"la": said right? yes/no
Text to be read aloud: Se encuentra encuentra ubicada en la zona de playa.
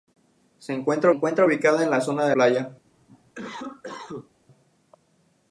yes